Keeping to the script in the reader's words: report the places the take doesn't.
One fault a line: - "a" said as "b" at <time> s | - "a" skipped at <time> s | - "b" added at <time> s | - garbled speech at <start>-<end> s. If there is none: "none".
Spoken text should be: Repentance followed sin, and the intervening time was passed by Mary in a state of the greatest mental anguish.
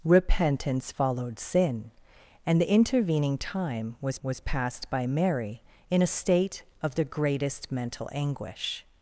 - "was" added at 4.2 s